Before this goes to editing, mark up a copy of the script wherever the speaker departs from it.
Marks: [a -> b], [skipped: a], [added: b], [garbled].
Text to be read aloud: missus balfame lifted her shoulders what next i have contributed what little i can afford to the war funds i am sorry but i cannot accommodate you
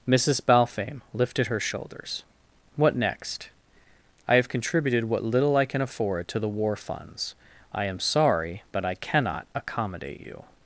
missus balfame lifted her shoulders what next i have contributed what little i can afford to the war funds i am sorry but i cannot accommodate you